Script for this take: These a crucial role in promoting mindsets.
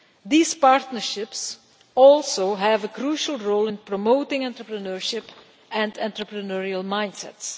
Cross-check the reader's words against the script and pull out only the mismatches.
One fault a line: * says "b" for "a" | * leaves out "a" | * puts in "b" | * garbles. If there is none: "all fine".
* puts in "partnerships also have"
* puts in "entrepreneurship and entrepreneurial"